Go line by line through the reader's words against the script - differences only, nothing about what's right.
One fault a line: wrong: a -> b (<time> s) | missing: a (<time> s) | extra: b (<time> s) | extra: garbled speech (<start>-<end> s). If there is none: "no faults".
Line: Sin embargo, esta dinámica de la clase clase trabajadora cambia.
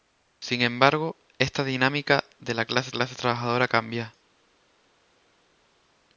no faults